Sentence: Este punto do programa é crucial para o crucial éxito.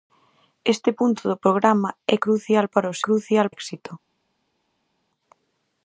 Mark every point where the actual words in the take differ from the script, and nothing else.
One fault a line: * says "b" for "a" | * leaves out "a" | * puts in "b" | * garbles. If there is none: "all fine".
all fine